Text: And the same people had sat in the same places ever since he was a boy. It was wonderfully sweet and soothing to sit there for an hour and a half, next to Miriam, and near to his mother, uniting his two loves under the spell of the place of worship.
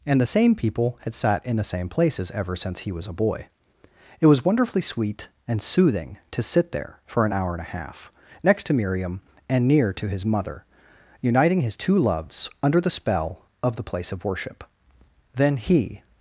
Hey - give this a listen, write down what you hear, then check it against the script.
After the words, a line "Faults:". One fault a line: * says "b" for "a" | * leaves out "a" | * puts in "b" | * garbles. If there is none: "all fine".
And the same people had sat in the same places ever since he was a boy. It was wonderfully sweet and soothing to sit there for an hour and a half, next to Miriam, and near to his mother, uniting his two loves under the spell of the place of worship. Then he
Faults:
* puts in "Then he"